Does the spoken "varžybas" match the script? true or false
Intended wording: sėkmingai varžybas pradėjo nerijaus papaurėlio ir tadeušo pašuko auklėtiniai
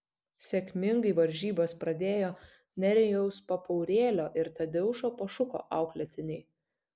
true